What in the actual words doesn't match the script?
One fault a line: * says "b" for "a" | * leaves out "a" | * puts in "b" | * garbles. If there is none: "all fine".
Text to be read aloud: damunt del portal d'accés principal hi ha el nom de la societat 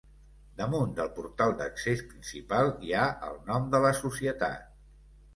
all fine